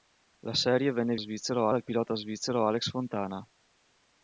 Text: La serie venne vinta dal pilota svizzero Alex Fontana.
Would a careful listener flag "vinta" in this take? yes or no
yes